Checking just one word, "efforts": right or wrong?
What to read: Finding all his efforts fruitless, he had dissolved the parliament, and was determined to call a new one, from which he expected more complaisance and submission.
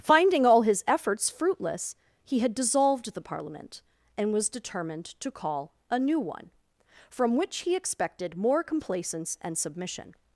right